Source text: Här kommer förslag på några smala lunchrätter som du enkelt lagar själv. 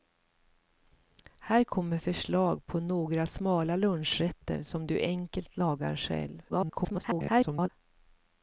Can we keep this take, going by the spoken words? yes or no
no